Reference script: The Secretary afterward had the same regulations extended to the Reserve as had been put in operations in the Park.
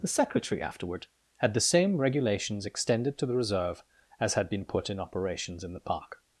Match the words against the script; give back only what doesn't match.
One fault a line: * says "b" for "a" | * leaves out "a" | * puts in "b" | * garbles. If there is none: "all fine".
all fine